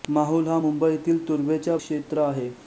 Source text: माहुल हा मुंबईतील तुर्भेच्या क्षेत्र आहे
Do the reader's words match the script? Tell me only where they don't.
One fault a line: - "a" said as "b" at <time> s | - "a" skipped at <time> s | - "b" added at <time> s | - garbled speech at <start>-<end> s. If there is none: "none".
none